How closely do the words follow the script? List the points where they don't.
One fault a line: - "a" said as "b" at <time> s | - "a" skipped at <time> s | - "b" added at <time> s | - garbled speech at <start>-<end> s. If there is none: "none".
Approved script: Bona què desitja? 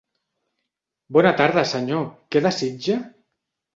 - "tarda senyor" added at 1.4 s